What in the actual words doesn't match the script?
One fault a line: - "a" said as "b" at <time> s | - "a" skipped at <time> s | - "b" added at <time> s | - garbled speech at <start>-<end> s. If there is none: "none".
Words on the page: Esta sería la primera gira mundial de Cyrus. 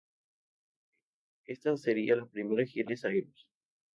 - "mundial" skipped at 2.9 s